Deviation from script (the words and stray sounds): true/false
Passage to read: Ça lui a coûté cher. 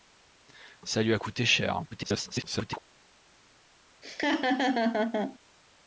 true